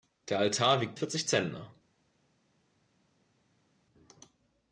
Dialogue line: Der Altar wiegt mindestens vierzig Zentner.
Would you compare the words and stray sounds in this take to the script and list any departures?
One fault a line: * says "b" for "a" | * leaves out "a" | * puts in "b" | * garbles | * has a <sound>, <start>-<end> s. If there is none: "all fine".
* leaves out "mindestens"